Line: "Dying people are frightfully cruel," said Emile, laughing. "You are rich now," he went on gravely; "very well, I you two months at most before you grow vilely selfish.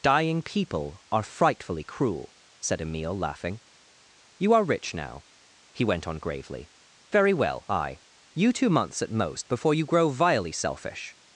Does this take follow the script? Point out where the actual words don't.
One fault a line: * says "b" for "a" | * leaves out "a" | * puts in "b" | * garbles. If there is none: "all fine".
all fine